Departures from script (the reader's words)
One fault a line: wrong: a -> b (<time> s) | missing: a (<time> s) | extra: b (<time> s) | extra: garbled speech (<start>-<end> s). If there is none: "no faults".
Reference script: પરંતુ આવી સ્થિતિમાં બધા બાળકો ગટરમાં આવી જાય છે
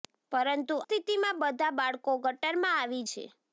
missing: આવી (0.8 s)
missing: જાય (3.0 s)